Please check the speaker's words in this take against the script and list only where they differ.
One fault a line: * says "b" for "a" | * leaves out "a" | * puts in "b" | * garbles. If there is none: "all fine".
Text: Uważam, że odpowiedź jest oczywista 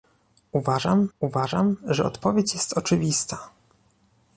* puts in "uważam"